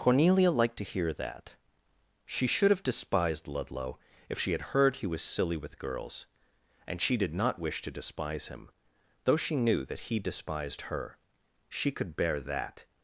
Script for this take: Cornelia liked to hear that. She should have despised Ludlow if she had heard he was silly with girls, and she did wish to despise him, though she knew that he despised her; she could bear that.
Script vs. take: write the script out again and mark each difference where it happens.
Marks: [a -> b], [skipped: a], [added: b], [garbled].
Cornelia liked to hear that. She should have despised Ludlow if she had heard he was silly with girls, and she did [added: not] wish to despise him, though she knew that he despised her; she could bear that.